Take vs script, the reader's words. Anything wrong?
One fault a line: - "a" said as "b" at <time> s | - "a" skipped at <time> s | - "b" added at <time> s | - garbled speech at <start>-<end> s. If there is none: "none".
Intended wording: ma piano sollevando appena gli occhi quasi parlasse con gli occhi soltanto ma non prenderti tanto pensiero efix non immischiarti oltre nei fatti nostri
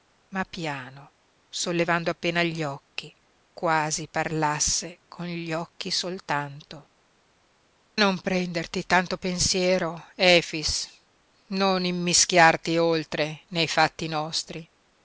- "ma" skipped at 6.9 s